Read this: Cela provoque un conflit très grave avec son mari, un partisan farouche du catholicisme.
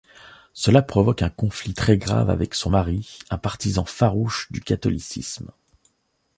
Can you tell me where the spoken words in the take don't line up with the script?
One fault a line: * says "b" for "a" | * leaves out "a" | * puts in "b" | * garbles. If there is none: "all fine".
all fine